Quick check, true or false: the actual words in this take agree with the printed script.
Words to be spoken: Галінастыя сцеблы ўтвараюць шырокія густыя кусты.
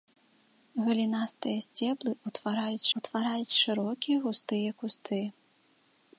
false